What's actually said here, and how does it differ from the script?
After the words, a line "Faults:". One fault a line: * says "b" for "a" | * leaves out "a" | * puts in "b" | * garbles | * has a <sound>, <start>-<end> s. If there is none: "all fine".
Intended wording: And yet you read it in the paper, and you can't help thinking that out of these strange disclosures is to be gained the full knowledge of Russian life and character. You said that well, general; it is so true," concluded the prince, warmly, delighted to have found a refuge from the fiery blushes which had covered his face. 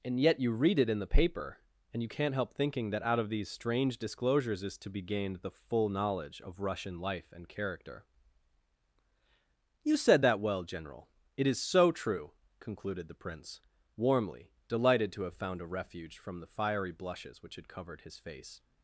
And yet you read it in the paper, and you can't help thinking that out of these strange disclosures is to be gained the full knowledge of Russian life and character. You said that well, general; it is so true," concluded the prince, warmly, delighted to have found a refuge from the fiery blushes which had covered his face.
Faults:
all fine